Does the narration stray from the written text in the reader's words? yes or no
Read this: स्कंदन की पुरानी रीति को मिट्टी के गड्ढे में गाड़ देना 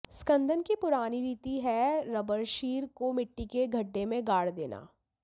yes